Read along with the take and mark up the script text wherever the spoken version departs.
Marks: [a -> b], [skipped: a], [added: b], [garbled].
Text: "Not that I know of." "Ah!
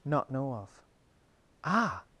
"Not [skipped: that I] know of." "Ah!